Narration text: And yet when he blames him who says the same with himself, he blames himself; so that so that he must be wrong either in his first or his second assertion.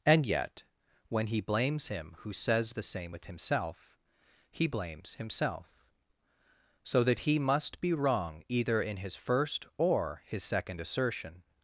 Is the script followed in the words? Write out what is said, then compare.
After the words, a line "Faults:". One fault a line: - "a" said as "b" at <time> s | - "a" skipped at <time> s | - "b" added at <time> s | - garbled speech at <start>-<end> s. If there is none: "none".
And yet when he blames him who says the same with himself, he blames himself; so that he must be wrong either in his first or his second assertion.
Faults:
- "so that" skipped at 7.2 s